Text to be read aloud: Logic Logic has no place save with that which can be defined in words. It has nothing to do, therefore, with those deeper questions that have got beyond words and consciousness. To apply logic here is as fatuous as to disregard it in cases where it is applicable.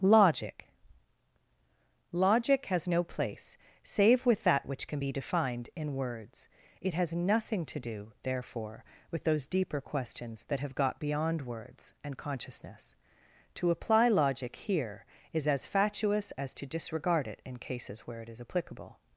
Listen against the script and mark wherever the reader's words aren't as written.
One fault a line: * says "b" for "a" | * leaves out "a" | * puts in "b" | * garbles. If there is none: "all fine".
all fine